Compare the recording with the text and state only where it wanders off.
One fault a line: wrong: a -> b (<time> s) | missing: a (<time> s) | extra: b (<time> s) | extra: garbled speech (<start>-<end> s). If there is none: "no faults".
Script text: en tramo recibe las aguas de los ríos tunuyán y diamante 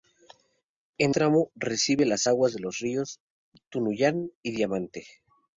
no faults